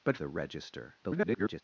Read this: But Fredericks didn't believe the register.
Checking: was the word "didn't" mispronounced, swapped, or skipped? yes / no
yes